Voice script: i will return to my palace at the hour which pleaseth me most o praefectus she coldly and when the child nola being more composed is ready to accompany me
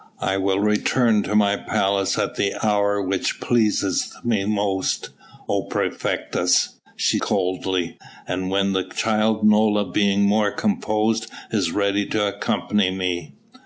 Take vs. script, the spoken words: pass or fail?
pass